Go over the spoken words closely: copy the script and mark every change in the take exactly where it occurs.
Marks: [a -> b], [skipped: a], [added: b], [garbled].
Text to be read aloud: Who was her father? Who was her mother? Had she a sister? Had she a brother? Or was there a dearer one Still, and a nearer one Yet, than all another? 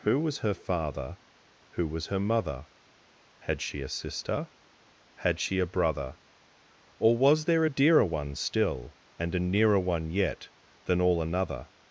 Who was her father? Who was her mother? Had she a sister? Had she a brother? Or was there a dearer one Still, and a nearer one Yet, than all another?